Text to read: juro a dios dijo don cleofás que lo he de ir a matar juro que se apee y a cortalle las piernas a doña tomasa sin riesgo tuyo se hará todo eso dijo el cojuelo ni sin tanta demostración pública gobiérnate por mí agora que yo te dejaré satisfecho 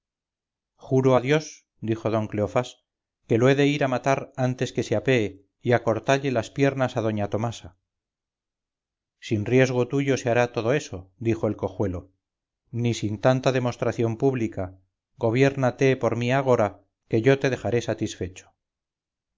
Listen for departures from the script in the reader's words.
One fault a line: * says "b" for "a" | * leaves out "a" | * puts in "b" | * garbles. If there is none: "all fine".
* says "antes" for "juro"